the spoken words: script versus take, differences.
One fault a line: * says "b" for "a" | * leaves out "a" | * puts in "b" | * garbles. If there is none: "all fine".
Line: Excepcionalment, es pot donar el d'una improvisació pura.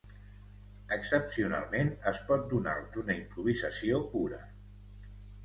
all fine